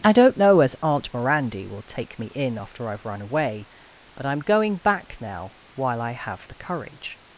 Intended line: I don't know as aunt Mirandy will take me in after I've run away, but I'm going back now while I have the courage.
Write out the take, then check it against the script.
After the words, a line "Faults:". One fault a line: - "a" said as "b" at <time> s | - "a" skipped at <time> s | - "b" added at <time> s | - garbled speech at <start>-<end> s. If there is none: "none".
I don't know as aunt Mirandy will take me in after I've run away, but I'm going back now while I have the courage.
Faults:
none